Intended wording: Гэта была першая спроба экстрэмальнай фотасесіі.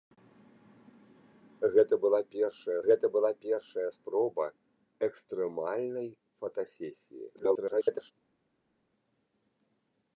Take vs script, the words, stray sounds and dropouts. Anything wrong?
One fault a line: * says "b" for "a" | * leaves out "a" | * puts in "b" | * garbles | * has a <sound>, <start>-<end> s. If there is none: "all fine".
* puts in "гэта была першая"
* garbles